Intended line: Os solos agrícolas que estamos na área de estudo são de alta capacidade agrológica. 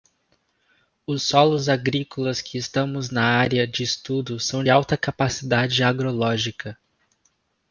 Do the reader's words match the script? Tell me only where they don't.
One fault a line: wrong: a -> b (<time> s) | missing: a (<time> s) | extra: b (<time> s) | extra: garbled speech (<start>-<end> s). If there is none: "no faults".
missing: de (4.6 s)